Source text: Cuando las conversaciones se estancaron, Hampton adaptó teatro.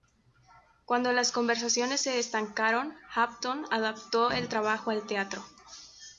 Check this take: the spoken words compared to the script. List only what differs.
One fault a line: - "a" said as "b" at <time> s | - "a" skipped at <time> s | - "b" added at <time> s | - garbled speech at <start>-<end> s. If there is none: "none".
- "el trabajo al" added at 4.3 s